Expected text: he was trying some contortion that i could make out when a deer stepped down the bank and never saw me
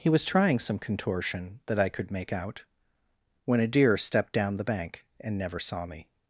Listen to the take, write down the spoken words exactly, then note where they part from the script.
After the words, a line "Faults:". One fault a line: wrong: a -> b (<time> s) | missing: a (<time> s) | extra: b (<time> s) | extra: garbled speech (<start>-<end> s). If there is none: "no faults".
he was trying some contortion that i could make out when a deer stepped down the bank and never saw me
Faults:
no faults